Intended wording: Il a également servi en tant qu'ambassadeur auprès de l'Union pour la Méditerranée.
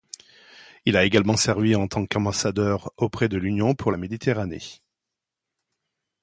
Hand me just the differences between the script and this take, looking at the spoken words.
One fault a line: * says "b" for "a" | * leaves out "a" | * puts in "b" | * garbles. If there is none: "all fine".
all fine